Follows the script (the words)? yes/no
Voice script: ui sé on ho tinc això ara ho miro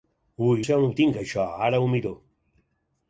yes